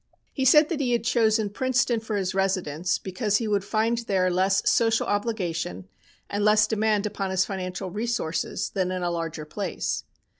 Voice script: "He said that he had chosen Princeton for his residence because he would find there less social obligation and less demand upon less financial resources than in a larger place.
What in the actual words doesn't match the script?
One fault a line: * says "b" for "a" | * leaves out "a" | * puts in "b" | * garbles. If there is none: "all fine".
* says "his" for "less"